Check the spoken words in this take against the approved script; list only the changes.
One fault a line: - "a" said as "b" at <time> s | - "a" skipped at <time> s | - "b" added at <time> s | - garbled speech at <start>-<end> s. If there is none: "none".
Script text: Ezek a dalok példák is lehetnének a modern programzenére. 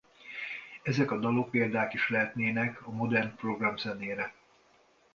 none